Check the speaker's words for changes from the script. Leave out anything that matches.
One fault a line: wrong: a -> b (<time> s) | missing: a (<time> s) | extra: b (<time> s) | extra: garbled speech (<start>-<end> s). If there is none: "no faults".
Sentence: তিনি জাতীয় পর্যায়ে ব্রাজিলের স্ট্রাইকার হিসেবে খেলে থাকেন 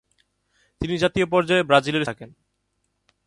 missing: স্ট্রাইকার হিসেবে খেলে (2.1 s)